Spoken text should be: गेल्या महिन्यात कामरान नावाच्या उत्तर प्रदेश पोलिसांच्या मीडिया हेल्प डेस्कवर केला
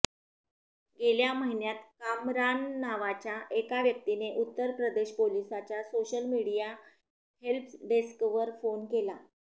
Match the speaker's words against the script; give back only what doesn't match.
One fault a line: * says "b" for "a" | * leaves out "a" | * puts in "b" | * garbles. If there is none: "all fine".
* puts in "एका व्यक्तीने"
* puts in "सोशल"
* puts in "फोन"